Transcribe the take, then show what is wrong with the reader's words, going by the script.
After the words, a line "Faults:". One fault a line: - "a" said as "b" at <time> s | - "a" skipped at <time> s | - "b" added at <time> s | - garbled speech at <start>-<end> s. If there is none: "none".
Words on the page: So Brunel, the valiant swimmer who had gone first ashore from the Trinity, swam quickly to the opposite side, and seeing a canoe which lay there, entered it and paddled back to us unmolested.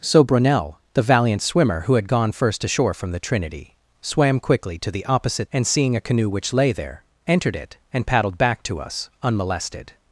So Brunel, the valiant swimmer who had gone first ashore from the Trinity, swam quickly to the opposite and seeing a canoe which lay there, entered it and paddled back to us unmolested.
Faults:
- "side" skipped at 5.5 s